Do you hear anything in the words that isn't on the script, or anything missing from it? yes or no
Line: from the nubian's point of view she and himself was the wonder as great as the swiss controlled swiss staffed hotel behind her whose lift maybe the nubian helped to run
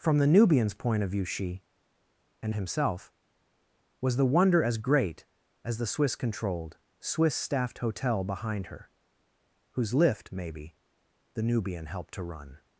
no